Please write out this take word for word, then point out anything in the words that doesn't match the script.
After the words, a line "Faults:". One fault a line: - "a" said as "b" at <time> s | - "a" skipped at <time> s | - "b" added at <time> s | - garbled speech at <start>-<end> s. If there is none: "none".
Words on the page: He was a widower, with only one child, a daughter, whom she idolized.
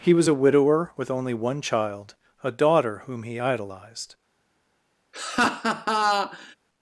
He was a widower, with only one child, a daughter, whom he idolized.
Faults:
- "she" said as "he" at 3.2 s